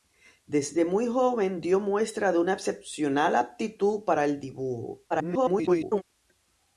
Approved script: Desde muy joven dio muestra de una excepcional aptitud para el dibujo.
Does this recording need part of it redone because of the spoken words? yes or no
yes